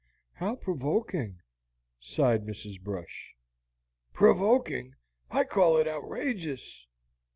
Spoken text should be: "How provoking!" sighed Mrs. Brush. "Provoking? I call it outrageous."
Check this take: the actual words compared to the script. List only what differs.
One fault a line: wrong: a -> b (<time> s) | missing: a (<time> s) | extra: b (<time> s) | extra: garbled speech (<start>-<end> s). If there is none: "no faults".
no faults